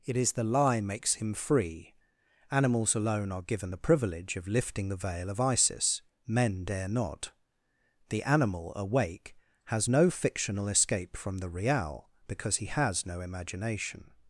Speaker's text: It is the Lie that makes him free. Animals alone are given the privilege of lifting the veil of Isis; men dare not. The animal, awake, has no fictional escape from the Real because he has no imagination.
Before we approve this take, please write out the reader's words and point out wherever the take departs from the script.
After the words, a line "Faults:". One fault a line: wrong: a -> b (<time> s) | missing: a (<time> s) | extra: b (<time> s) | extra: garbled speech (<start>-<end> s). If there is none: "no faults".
It is the Lie makes him free. Animals alone are given the privilege of lifting the veil of Isis; men dare not. The animal, awake, has no fictional escape from the Real because he has no imagination.
Faults:
missing: that (0.8 s)